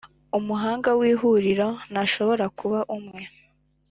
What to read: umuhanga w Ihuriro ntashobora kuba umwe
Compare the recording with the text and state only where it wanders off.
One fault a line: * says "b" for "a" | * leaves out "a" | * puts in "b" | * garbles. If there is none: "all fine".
all fine